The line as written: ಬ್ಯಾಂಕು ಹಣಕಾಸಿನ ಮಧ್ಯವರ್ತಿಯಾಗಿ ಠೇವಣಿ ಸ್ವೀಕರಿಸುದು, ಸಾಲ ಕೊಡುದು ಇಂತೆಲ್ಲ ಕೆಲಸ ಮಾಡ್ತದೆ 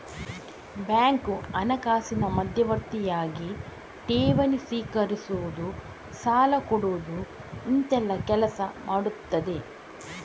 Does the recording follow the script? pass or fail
pass